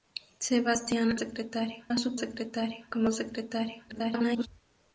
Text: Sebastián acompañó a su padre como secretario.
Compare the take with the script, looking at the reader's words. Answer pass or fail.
fail